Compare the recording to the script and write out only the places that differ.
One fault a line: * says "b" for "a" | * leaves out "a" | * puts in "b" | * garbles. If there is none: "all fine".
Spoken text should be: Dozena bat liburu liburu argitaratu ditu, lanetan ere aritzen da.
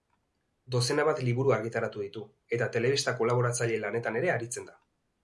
* leaves out "liburu"
* puts in "eta telebista kolaboratzaile"